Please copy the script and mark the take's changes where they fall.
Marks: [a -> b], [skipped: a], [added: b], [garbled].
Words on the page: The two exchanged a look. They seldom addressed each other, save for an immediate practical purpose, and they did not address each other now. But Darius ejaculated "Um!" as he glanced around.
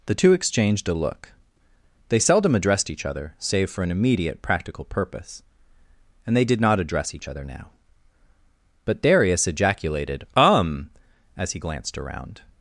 The two exchanged a look. They seldom addressed each other, save for an immediate practical purpose, and they did not address each other now. But Darius ejaculated "Um!" as he glanced around.